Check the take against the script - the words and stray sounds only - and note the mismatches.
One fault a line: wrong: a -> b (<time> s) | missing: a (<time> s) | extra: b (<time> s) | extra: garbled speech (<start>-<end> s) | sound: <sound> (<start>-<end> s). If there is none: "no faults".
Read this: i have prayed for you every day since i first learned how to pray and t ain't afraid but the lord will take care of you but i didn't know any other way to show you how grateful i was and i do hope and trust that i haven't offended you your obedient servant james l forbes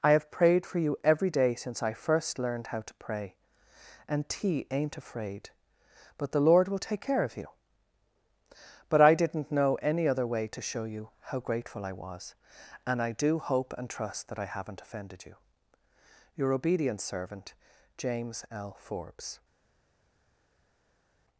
no faults